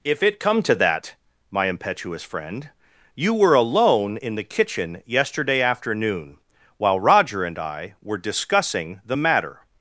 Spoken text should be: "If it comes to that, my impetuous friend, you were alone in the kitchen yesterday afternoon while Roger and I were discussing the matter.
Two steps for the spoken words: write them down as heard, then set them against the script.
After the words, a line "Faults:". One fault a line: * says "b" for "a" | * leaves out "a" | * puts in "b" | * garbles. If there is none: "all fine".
"If it come to that, my impetuous friend, you were alone in the kitchen yesterday afternoon while Roger and I were discussing the matter.
Faults:
* says "come" for "comes"